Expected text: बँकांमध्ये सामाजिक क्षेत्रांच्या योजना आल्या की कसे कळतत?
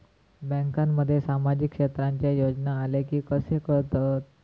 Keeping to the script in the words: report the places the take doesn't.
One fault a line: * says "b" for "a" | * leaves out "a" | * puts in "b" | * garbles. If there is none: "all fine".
all fine